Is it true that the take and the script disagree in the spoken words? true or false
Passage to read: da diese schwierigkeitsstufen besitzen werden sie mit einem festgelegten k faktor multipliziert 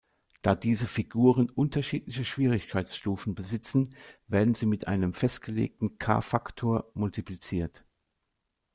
true